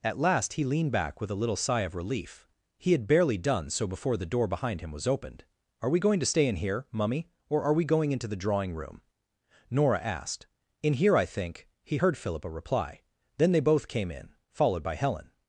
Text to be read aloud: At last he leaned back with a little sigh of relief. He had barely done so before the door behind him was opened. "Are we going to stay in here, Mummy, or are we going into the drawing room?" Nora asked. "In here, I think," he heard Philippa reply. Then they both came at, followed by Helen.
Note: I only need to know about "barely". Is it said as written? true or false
true